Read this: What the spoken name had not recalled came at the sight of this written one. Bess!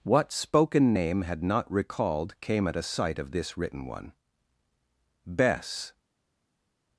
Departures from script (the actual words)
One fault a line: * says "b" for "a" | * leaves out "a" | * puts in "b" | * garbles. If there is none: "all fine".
* leaves out "the"
* says "a" for "the"